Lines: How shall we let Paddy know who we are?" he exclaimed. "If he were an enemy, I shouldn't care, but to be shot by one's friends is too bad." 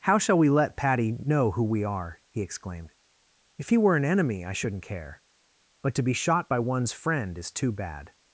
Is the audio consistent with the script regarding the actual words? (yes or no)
no